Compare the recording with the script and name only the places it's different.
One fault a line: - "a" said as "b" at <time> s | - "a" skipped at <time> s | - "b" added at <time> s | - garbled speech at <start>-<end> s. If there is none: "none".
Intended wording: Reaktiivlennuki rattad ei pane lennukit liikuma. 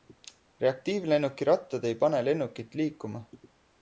none